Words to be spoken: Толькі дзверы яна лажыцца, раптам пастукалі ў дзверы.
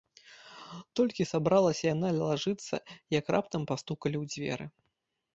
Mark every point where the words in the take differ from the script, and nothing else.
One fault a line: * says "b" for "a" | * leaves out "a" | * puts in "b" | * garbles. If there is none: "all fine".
* says "сабралася" for "дзверы"
* puts in "як"